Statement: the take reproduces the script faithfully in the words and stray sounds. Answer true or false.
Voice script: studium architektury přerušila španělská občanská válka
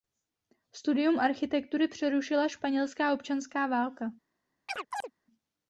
false